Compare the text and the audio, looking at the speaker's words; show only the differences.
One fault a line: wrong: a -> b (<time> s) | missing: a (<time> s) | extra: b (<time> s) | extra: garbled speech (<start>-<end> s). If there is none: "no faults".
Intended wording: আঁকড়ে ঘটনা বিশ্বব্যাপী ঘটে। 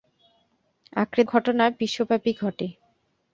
no faults